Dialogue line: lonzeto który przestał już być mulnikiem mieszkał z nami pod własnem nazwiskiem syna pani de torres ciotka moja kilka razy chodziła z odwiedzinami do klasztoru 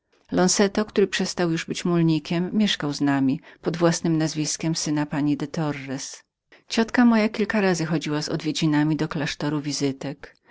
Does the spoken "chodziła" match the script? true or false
true